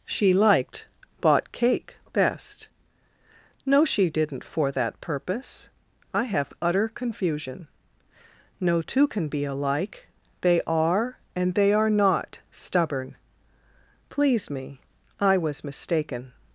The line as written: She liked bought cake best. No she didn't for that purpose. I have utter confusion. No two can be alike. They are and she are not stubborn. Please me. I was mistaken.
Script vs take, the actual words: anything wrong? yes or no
yes